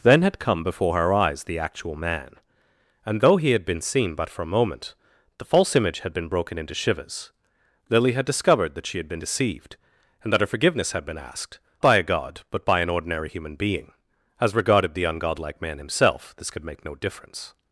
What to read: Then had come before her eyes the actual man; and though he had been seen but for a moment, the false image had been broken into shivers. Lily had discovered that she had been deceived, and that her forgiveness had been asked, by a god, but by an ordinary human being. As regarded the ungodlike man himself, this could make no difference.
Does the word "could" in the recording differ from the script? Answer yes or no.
no